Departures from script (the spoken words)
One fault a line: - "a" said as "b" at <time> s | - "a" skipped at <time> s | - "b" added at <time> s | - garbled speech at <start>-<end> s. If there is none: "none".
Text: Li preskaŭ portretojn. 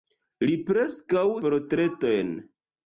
none